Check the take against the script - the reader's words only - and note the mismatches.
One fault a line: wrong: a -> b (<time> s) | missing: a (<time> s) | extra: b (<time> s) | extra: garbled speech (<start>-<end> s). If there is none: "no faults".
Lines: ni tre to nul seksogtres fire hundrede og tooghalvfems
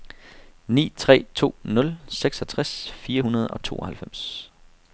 no faults